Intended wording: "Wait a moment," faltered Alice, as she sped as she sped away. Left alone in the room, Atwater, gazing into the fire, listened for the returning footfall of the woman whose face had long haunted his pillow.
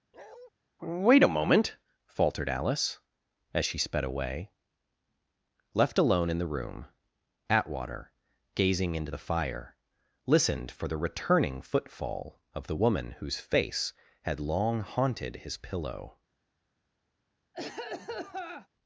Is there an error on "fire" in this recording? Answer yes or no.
no